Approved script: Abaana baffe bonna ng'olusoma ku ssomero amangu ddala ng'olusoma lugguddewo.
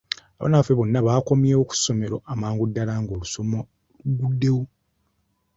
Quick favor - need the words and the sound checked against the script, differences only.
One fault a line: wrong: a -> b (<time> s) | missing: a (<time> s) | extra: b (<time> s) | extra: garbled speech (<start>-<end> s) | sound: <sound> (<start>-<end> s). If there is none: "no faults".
wrong: ng'olusoma -> baakomyewo (1.1 s)